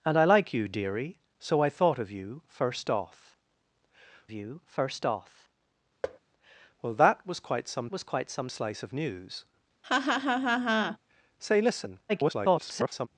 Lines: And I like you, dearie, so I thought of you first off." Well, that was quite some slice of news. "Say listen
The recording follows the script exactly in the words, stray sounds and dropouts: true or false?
false